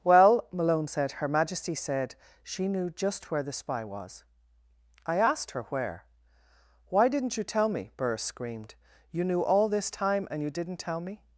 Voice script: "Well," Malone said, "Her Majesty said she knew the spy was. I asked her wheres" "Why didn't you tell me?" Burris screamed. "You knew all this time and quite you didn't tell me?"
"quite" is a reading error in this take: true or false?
true